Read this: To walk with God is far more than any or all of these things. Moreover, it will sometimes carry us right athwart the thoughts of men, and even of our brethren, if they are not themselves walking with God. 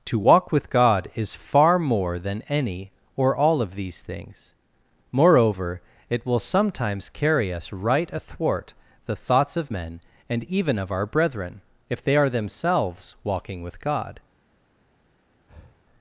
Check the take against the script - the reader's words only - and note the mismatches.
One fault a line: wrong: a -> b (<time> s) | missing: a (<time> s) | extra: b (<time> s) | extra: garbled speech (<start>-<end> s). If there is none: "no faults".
missing: not (12.3 s)